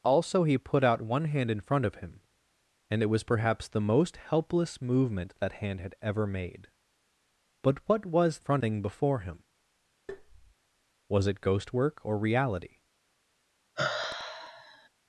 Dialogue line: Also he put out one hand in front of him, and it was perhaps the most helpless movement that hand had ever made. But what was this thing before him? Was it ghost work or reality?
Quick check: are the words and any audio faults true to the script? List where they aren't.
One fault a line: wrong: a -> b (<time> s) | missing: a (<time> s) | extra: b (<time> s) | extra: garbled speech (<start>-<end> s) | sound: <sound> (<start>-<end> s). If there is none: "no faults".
wrong: this -> front (8.4 s)
sound: tap (10.1-10.5 s)
sound: sigh (13.8-14.9 s)